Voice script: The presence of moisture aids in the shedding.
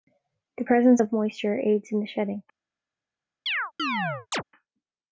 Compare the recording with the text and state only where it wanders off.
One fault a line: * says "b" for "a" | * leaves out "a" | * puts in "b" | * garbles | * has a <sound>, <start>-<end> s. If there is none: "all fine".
* has a chirp, 3.5-4.4 s